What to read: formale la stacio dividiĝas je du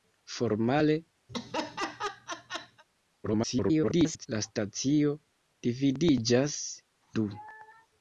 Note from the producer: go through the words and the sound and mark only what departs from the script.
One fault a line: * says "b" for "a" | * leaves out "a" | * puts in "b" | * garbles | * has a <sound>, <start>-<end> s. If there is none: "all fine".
* has a laugh, 1.3-2.8 s
* garbles
* leaves out "je"